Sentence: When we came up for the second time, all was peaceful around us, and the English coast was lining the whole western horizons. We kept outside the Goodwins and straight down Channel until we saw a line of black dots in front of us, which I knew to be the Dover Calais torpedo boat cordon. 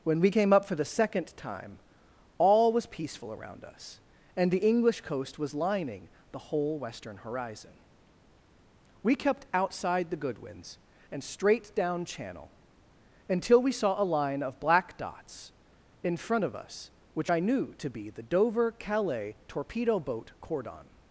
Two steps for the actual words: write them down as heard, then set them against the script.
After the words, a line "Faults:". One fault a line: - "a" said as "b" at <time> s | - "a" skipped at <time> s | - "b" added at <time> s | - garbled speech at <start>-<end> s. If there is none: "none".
When we came up for the second time, all was peaceful around us, and the English coast was lining the whole western horizon. We kept outside the Goodwins and straight down Channel until we saw a line of black dots in front of us, which I knew to be the Dover Calais torpedo boat cordon.
Faults:
- "horizons" said as "horizon" at 7.2 s